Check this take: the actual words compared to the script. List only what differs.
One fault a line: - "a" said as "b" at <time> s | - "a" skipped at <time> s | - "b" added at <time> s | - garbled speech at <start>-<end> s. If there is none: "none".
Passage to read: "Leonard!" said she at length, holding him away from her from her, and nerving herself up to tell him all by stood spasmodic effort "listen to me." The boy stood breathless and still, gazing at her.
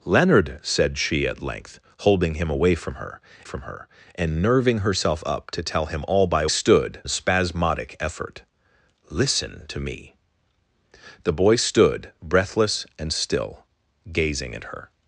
none